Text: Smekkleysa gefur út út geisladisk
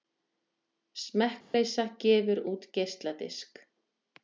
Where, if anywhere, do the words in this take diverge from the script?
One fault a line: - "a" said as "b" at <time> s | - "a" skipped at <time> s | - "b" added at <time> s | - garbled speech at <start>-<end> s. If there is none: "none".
- "út" skipped at 2.6 s